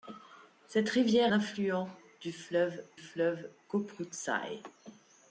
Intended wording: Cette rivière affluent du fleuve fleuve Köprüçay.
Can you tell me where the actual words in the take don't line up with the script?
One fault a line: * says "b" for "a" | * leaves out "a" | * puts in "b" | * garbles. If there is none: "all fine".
all fine